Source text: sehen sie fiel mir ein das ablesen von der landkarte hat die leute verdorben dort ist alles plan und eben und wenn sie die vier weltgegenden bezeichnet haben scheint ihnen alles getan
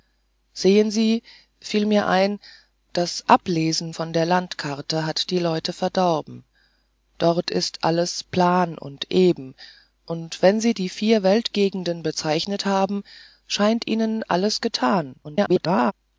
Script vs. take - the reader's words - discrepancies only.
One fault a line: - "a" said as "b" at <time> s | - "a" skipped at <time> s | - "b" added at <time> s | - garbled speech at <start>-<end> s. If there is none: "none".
- garbled speech at 15.2-15.9 s